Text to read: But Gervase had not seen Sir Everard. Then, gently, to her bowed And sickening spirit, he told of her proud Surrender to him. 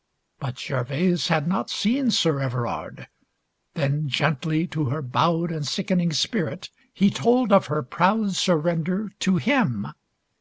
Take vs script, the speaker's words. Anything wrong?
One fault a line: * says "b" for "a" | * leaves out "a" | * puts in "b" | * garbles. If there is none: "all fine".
all fine